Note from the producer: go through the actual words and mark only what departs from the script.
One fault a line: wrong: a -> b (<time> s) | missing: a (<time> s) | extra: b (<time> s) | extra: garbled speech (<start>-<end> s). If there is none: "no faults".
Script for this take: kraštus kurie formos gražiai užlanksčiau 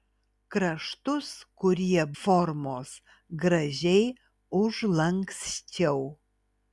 no faults